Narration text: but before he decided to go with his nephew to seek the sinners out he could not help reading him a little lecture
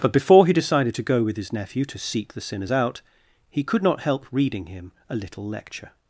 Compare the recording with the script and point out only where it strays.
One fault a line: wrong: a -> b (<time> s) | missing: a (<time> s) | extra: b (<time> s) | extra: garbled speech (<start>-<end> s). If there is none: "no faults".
no faults